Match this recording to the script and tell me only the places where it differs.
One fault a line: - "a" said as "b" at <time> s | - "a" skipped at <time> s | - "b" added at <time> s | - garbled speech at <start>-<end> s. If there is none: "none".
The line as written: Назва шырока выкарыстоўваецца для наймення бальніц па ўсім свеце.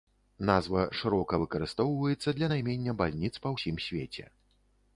none